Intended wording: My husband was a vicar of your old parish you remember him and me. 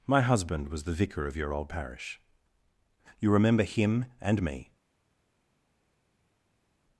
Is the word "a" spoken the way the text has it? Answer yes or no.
no